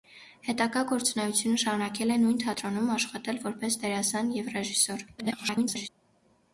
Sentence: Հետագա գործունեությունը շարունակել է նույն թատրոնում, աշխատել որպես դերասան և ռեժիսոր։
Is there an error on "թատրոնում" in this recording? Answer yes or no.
no